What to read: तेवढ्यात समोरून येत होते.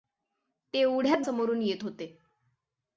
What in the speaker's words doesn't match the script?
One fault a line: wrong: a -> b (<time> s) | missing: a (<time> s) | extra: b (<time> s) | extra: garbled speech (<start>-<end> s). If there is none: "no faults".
no faults